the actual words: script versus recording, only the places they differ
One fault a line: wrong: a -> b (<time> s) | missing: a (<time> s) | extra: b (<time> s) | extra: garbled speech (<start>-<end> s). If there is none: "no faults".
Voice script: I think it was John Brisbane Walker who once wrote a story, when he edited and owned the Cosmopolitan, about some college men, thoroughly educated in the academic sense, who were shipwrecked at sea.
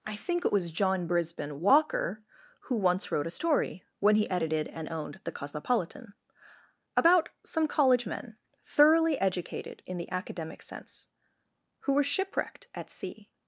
no faults